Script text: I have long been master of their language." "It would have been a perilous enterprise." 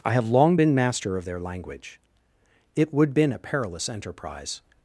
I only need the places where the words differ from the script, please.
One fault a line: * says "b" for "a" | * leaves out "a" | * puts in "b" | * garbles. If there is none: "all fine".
* leaves out "have"